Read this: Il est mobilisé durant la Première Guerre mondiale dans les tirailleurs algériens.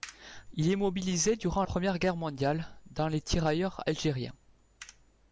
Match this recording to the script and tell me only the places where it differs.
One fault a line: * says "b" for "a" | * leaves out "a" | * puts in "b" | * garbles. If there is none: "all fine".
* leaves out "la"